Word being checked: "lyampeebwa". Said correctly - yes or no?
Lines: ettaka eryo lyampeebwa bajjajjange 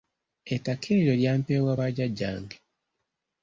yes